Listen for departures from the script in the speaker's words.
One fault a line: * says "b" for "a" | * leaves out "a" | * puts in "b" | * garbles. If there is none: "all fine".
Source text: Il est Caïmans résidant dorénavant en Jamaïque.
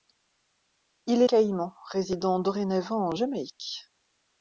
all fine